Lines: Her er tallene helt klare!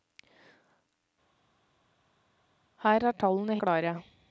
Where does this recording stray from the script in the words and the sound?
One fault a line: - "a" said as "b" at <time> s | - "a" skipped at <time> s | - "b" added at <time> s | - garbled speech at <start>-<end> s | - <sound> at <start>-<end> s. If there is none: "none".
- "helt" skipped at 3.6 s